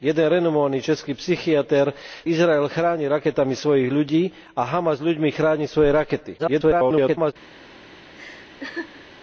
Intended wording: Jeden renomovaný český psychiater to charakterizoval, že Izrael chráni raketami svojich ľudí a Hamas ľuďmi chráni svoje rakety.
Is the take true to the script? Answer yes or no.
no